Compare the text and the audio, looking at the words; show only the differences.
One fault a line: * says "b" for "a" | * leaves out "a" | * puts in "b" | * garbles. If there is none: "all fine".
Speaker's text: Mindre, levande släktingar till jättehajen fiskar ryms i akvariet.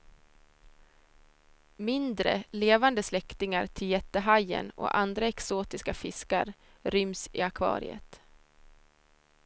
* puts in "och andra exotiska"